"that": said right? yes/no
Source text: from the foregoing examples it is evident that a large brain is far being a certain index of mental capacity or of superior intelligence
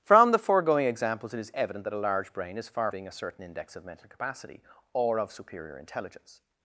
yes